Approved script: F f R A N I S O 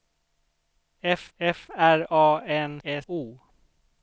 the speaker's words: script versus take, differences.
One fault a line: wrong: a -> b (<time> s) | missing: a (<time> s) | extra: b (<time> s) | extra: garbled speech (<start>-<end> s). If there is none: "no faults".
no faults